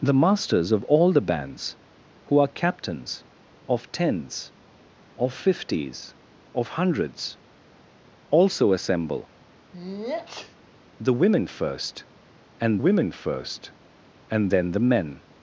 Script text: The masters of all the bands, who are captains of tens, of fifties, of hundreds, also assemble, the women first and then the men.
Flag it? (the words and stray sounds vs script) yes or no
yes